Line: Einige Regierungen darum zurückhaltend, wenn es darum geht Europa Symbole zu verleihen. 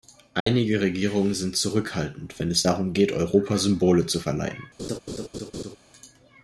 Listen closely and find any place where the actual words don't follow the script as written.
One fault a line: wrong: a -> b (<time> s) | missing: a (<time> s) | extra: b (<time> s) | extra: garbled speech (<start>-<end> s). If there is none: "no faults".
wrong: darum -> sind (1.3 s)